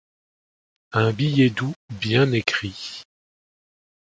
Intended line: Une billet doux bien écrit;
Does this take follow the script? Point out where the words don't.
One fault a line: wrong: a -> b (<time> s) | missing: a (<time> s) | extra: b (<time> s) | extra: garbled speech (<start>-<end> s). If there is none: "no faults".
wrong: Une -> Un (0.9 s)